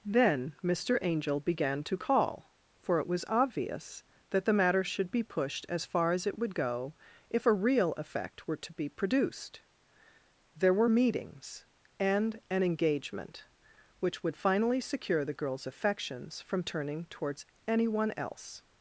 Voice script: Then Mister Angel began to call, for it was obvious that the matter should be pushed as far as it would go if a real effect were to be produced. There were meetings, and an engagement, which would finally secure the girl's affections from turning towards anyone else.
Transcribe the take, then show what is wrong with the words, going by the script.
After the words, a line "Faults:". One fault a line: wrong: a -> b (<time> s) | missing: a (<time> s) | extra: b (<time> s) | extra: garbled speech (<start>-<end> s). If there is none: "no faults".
Then Mister Angel began to call, for it was obvious that the matter should be pushed as far as it would go if a real effect were to be produced. There were meetings, and an engagement, which would finally secure the girl's affections from turning towards anyone else.
Faults:
no faults